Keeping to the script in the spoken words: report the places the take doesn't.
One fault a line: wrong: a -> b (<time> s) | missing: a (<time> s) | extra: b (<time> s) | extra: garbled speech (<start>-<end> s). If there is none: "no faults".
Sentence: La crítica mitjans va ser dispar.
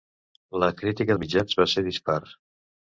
no faults